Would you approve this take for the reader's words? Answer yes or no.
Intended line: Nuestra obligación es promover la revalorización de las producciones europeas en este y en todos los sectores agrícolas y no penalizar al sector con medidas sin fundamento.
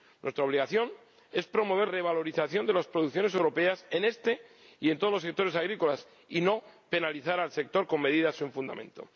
no